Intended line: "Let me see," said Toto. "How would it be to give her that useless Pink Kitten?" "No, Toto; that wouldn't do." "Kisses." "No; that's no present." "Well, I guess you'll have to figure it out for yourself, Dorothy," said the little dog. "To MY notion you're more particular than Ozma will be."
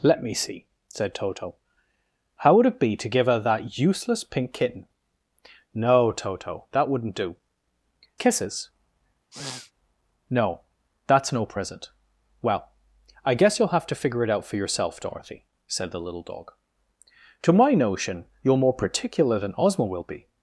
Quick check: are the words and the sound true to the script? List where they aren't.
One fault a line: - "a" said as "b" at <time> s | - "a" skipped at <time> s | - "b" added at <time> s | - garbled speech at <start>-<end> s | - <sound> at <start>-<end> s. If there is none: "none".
- sniff at 9.3-9.7 s